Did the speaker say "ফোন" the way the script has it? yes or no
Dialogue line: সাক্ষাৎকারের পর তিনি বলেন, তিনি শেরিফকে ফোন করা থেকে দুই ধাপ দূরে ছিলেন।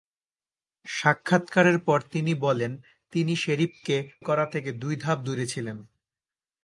no